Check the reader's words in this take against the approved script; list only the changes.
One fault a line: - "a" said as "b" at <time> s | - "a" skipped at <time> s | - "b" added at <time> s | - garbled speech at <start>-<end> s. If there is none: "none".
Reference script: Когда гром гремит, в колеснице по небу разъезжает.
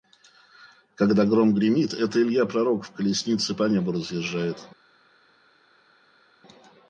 - "это Илья пророк" added at 1.9 s